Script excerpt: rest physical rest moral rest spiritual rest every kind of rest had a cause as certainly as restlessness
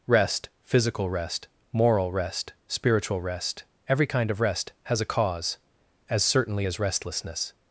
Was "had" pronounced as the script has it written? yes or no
no